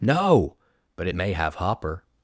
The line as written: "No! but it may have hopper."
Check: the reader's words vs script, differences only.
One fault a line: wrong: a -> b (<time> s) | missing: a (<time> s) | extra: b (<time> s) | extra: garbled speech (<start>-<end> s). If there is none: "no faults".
no faults